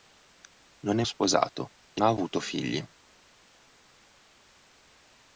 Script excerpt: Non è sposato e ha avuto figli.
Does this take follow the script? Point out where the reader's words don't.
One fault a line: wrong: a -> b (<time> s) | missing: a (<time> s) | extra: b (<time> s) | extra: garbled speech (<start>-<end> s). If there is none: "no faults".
no faults